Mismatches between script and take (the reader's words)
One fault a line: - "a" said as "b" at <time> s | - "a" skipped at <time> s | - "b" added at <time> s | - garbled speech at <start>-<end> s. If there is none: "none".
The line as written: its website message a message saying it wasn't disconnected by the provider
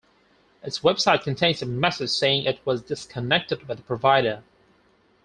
- "message" said as "contains" at 1.2 s
- "wasn't" said as "was" at 2.6 s